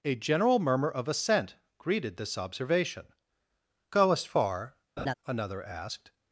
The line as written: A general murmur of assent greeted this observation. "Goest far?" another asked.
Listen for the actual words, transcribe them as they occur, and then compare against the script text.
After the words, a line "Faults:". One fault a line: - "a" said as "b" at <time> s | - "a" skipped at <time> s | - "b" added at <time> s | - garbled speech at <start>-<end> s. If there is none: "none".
A general murmur of assent greeted this observation. "Goest far?" another asked.
Faults:
none